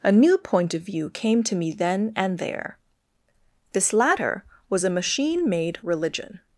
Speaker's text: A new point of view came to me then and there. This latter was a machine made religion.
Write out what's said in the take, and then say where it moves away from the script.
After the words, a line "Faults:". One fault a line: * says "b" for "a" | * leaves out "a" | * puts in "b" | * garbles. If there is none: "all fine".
A new point of view came to me then and there. This latter was a machine made religion.
Faults:
all fine